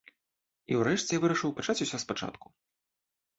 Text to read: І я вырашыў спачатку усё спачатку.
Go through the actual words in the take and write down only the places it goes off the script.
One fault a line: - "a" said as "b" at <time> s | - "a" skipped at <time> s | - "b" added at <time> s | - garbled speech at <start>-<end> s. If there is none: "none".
- "ўрэшце" added at 0.8 s
- "спачатку" said as "пачаць" at 1.6 s